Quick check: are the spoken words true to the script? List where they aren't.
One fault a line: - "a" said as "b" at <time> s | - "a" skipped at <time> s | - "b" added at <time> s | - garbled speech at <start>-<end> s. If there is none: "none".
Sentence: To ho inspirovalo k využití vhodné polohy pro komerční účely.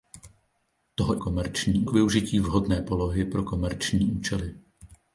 - "inspirovalo" said as "komerční" at 1.2 s